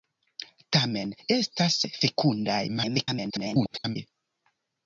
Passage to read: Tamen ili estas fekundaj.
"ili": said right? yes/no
no